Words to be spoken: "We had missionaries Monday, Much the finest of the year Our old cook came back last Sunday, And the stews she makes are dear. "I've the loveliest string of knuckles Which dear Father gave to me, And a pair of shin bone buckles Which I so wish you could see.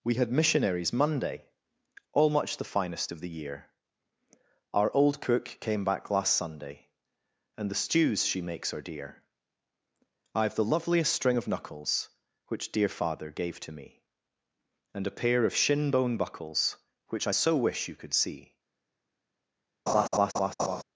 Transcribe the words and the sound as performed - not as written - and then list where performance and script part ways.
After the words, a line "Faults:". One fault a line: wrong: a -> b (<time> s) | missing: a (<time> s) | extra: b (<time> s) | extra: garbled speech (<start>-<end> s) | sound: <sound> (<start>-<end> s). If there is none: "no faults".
"We had missionaries Monday, all Much the finest of the year Our old cook came back last Sunday, And the stews she makes are dear. "I've the loveliest string of knuckles Which dear Father gave to me, And a pair of shin bone buckles Which I so wish you could see.
Faults:
extra: all (2.1 s)
sound: laugh (19.9-20.8 s)